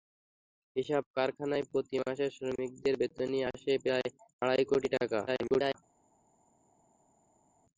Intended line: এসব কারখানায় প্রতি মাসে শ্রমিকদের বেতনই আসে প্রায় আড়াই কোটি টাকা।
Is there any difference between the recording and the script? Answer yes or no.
yes